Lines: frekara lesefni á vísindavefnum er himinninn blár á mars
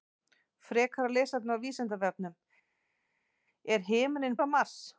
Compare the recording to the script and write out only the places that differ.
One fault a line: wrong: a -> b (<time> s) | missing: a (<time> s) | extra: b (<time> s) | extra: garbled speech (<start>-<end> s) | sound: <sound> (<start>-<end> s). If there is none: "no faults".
missing: blár (4.4 s)